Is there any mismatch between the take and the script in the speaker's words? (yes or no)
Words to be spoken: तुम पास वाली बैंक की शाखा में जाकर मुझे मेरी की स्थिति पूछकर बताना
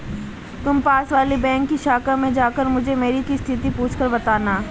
no